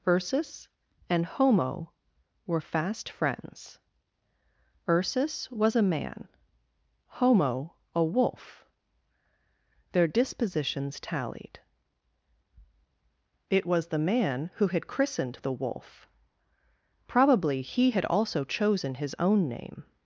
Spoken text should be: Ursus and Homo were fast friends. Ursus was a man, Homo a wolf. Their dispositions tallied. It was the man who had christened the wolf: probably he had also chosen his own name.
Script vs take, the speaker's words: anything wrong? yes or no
no